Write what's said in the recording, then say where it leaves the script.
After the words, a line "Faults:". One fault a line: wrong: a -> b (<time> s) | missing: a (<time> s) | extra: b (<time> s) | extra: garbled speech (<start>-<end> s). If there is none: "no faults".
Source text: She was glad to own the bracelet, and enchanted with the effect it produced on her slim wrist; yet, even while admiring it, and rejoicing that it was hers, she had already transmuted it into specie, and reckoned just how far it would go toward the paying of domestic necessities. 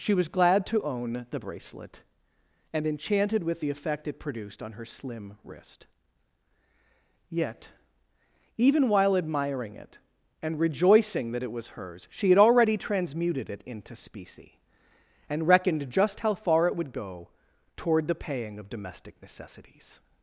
She was glad to own the bracelet, and enchanted with the effect it produced on her slim wrist; yet, even while admiring it, and rejoicing that it was hers, she had already transmuted it into specie, and reckoned just how far it would go toward the paying of domestic necessities.
Faults:
no faults